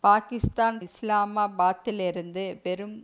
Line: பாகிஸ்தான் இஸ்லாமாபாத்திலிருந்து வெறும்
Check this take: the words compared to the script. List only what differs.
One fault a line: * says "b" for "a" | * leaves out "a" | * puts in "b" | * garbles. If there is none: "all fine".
all fine